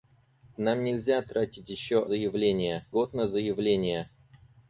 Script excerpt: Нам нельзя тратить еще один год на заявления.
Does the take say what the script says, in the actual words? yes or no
no